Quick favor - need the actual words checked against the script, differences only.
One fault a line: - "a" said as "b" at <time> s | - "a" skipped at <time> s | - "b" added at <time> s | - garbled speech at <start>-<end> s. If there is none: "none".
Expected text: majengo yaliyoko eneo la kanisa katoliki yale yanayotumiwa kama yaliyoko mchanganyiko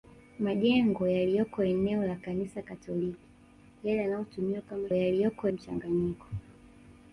none